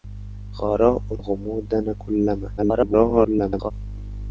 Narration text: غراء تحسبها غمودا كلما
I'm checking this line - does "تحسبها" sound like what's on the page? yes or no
no